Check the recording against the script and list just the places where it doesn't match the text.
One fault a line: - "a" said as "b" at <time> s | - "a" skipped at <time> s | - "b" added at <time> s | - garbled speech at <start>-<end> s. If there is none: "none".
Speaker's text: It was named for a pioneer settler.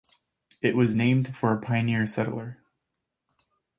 none